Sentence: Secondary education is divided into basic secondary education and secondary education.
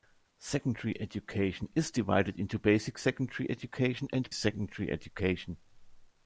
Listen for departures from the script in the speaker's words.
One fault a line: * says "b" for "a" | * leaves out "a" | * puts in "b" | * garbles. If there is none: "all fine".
all fine